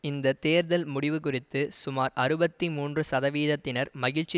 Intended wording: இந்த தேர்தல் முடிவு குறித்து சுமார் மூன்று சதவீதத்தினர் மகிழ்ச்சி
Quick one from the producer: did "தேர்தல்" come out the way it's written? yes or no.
yes